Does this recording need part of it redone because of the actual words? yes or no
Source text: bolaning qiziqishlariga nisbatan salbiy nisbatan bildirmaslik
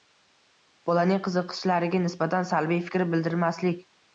yes